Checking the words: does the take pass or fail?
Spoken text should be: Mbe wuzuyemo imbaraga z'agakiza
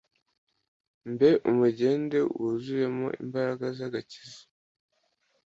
fail